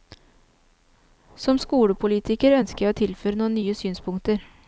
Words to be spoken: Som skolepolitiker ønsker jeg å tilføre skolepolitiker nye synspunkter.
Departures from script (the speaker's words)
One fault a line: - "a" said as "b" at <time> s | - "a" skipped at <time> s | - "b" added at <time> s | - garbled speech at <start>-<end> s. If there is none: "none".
- "skolepolitiker" said as "noen" at 3.4 s